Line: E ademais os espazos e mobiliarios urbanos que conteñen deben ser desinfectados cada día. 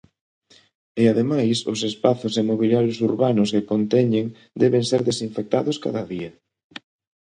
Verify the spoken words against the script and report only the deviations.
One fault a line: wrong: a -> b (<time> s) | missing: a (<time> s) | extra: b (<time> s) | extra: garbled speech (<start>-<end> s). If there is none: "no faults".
no faults